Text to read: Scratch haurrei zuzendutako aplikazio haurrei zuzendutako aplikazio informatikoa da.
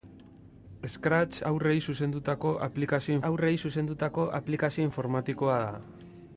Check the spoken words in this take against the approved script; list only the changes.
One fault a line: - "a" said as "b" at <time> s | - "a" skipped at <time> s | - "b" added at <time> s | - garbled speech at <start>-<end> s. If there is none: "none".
none